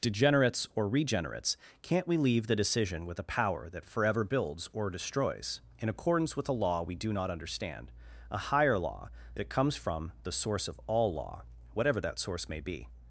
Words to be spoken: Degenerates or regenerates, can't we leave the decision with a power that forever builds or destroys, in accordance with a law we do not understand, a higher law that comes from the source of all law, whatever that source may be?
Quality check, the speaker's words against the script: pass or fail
pass